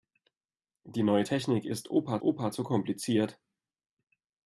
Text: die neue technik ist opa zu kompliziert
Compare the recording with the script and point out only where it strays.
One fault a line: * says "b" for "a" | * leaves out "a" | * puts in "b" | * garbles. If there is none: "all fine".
* puts in "opa"